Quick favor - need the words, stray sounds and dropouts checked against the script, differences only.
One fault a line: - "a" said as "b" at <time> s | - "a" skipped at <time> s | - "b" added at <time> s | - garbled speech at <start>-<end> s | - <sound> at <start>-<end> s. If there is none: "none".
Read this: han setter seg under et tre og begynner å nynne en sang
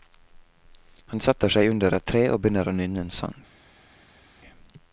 none